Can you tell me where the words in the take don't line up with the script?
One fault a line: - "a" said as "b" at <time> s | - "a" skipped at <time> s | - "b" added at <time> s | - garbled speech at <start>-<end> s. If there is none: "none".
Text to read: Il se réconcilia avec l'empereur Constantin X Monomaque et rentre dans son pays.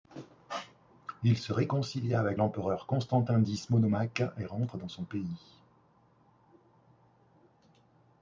none